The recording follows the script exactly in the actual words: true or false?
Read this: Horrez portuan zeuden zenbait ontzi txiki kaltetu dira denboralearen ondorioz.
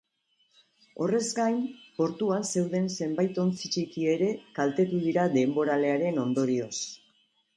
false